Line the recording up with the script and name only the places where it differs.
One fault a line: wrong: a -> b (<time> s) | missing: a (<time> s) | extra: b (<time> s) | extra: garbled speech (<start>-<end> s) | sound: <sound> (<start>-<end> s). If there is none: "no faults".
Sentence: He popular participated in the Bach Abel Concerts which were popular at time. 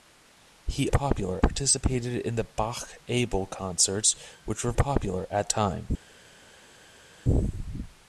no faults